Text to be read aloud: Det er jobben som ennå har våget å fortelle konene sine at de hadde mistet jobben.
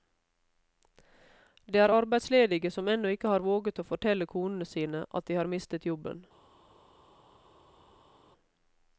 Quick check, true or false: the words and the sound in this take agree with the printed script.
false